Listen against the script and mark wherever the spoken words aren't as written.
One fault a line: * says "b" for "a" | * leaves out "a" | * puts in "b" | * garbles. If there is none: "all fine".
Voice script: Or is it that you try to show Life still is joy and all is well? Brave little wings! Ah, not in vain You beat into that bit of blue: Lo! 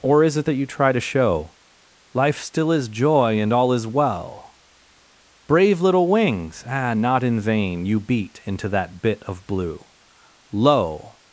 all fine